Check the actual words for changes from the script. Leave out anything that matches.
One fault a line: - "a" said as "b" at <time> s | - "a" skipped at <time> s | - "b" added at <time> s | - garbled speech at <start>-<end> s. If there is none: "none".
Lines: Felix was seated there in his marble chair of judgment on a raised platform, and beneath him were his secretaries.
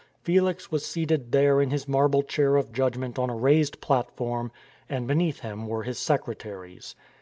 none